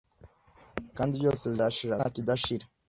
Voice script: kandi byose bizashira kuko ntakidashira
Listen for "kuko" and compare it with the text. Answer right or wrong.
wrong